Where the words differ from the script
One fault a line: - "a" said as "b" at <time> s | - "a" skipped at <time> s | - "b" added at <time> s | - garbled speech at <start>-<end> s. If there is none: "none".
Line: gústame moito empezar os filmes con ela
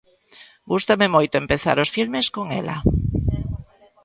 none